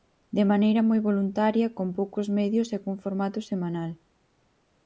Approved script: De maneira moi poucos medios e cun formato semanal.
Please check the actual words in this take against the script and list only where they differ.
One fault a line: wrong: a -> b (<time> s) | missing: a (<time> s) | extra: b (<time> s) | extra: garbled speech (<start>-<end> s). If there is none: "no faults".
extra: voluntaria con (1.1 s)